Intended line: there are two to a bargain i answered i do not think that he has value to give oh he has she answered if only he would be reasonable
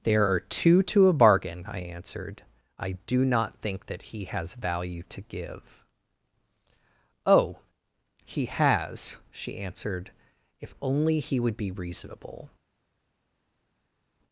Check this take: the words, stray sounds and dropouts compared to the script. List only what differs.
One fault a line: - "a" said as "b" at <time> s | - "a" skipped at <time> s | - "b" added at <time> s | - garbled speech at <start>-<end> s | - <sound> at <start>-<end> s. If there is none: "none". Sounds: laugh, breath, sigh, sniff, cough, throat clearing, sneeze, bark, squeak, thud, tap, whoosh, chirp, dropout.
none